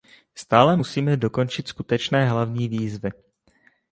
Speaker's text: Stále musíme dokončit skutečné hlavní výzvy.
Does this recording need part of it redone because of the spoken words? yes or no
no